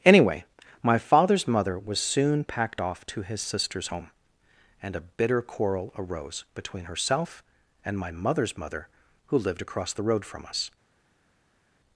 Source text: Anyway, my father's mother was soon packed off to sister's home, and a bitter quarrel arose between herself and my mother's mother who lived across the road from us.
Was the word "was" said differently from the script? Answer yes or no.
no